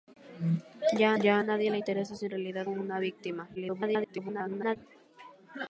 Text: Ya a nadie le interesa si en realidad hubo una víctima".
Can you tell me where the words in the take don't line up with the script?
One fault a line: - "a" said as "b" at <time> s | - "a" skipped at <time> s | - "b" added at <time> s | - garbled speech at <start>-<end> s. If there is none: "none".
- "ya" added at 1.2 s
- "hubo" skipped at 2.7 s
- garbled speech at 3.6-4.8 s